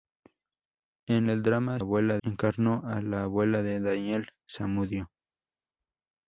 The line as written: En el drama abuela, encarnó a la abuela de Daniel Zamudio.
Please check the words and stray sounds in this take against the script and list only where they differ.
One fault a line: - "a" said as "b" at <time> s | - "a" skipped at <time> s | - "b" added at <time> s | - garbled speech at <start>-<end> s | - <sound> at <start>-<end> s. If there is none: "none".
none